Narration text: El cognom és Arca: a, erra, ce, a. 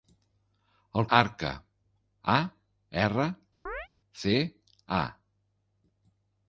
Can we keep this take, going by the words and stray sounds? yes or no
no